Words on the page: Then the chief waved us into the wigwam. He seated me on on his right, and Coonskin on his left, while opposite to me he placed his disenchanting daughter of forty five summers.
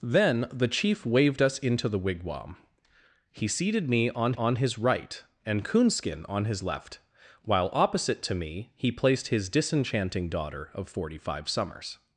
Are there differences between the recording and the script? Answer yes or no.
no